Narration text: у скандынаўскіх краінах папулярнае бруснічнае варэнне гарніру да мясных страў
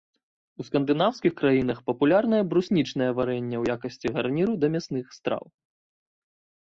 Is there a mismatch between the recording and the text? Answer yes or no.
yes